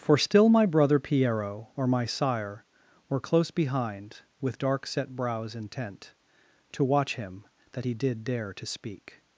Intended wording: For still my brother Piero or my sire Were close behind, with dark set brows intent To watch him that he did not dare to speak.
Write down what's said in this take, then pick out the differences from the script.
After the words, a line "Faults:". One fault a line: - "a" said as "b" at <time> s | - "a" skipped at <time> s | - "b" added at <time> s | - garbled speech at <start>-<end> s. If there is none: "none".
For still my brother Piero or my sire Were close behind, with dark set brows intent To watch him that he did dare to speak.
Faults:
- "not" skipped at 8.2 s